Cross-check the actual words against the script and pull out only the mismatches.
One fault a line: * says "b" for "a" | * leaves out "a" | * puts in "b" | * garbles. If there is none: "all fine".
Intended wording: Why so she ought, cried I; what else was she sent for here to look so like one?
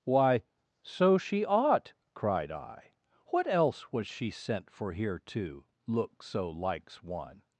* says "likes" for "like"